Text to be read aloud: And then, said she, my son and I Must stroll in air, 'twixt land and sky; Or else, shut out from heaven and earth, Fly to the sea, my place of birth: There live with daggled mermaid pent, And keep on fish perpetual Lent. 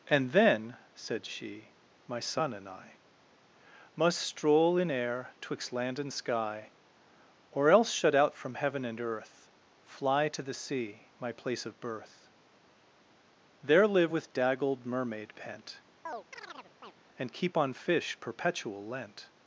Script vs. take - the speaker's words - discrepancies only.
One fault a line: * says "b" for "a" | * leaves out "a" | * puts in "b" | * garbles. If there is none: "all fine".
all fine